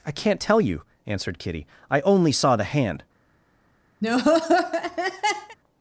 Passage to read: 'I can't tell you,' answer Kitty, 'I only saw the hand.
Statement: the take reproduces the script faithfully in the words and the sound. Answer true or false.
false